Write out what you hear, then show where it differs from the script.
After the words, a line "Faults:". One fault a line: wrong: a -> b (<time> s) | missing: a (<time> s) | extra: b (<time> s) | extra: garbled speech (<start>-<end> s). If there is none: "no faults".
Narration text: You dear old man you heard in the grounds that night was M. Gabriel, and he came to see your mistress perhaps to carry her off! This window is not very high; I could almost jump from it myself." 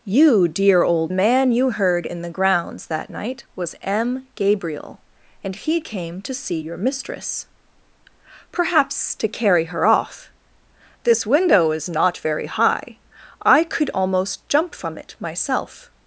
You dear old man you heard in the grounds that night was M. Gabriel, and he came to see your mistress perhaps to carry her off! This window is not very high; I could almost jump from it myself."
Faults:
no faults